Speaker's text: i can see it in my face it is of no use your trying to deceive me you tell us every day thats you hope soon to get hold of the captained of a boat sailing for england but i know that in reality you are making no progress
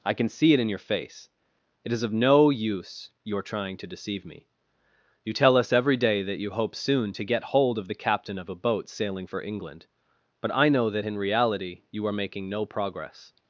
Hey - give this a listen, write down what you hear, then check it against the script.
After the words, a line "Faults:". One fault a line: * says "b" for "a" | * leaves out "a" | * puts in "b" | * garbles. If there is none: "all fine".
i can see it in your face it is of no use your trying to deceive me you tell us every day that you hope soon to get hold of the captain of a boat sailing for england but i know that in reality you are making no progress
Faults:
* says "your" for "my"
* says "that" for "thats"
* says "captain" for "captained"